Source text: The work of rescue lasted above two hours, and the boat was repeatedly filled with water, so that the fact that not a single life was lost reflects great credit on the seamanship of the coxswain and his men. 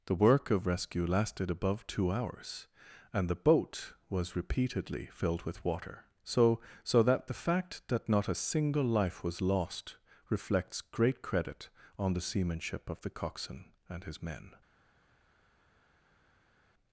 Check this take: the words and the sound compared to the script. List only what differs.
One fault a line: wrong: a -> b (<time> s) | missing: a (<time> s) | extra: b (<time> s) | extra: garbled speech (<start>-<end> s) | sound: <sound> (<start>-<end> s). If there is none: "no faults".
extra: so (6.8 s)